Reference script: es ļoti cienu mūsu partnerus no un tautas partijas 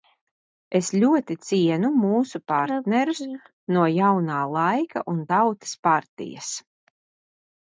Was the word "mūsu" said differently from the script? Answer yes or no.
no